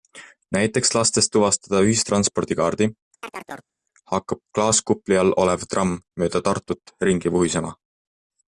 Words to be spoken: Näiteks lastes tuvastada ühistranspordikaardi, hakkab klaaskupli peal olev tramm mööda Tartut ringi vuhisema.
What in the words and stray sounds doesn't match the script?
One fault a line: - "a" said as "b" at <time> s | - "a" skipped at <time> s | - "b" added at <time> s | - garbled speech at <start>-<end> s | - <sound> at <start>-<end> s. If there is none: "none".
- chirp at 3.2-3.7 s
- "peal" said as "all" at 5.2 s